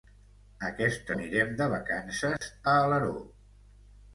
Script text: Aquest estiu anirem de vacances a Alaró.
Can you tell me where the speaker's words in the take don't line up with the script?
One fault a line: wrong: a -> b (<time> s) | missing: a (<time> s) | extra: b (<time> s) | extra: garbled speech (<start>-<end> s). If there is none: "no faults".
missing: estiu (1.1 s)